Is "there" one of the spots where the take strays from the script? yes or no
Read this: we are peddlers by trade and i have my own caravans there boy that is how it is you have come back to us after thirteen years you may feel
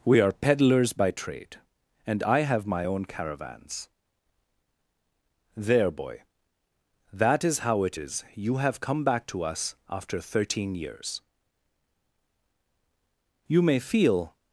no